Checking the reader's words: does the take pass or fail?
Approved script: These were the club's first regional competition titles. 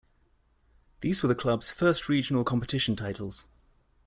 pass